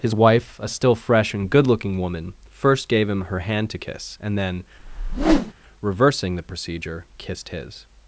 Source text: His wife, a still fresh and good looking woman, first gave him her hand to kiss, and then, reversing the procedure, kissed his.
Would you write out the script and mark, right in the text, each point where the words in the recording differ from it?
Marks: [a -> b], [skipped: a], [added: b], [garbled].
His wife, a still fresh and good looking woman, first gave him her hand to kiss, and then, reversing the procedure, kissed his.